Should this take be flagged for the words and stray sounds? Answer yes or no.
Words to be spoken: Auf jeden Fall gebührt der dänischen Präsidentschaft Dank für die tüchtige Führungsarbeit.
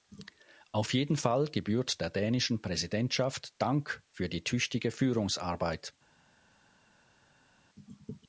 no